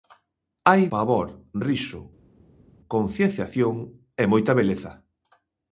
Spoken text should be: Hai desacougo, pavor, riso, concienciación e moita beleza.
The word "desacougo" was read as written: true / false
false